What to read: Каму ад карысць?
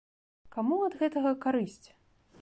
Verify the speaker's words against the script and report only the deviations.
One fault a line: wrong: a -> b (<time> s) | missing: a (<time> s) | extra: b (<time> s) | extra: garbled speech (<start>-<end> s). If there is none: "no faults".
extra: гэтага (1.0 s)